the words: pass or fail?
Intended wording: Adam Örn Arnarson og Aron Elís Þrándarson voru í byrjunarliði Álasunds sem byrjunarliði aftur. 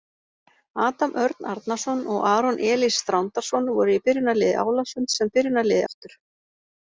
pass